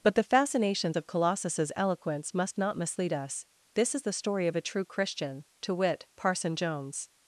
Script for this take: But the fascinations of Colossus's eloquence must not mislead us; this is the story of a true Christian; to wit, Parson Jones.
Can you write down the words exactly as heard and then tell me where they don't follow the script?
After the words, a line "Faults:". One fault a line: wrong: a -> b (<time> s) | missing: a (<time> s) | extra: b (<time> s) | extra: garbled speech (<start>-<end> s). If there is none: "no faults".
But the fascinations of Colossus's eloquence must not mislead us; this is the story of a true Christian; to wit, Parson Jones.
Faults:
no faults